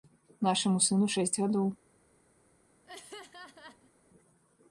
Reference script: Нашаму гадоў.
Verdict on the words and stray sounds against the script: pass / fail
fail